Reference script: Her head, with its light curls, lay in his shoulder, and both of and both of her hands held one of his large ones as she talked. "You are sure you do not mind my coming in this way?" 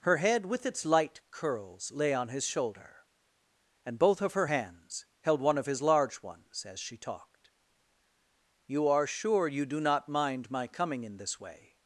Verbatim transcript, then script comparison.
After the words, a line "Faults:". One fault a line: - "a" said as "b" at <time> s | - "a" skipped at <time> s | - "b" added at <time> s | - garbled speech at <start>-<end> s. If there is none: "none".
Her head, with its light curls, lay on his shoulder, and both of her hands held one of his large ones as she talked. "You are sure you do not mind my coming in this way?"
Faults:
- "in" said as "on" at 2.1 s
- "and both of" skipped at 4.3 s